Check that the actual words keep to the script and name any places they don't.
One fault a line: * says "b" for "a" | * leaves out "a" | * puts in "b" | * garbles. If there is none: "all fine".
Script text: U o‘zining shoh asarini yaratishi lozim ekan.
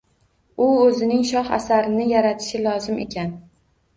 all fine